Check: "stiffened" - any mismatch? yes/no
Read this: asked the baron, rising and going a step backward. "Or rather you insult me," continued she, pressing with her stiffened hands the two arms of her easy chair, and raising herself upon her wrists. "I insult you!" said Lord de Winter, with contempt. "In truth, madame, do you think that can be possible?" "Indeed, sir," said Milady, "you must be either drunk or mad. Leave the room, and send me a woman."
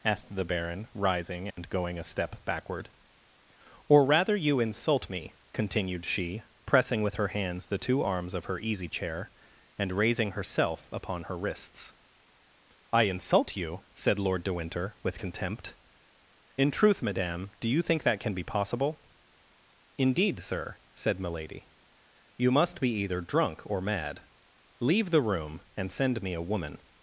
yes